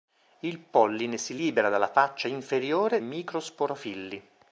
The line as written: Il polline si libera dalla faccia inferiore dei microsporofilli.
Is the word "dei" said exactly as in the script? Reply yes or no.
no